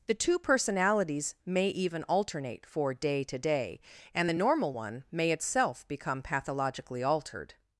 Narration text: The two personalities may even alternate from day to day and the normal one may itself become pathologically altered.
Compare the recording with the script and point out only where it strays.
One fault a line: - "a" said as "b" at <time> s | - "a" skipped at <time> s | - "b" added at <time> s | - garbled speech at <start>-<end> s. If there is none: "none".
- "from" said as "for" at 2.6 s